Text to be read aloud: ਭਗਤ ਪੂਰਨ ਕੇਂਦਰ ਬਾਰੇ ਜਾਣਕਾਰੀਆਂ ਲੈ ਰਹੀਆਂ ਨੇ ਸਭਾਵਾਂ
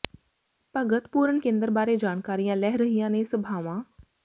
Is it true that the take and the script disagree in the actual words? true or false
false